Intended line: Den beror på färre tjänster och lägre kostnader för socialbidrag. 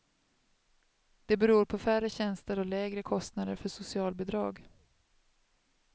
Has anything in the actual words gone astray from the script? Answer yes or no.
yes